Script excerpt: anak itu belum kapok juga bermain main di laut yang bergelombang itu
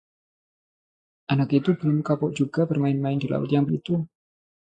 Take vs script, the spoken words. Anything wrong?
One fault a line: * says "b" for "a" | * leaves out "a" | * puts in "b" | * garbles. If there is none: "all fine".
* leaves out "bergelombang"